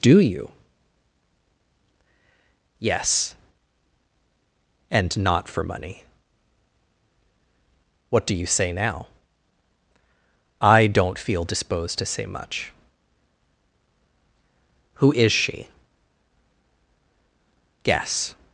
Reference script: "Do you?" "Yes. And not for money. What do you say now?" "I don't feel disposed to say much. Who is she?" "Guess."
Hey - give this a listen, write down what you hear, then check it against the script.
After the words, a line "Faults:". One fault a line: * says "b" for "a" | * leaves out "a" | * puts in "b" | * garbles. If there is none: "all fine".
"Do you?" "Yes. And not for money. What do you say now?" "I don't feel disposed to say much. Who is she?" "Guess."
Faults:
all fine